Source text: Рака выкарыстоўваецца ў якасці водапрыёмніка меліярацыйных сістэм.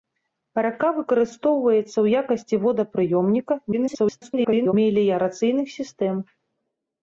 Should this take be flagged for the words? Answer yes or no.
yes